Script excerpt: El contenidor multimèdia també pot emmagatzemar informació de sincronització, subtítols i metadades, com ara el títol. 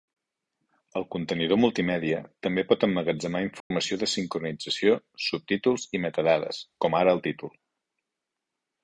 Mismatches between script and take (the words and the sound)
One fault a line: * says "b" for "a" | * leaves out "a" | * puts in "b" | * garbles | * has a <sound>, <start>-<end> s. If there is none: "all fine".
* has a dropout, 3.6-3.7 s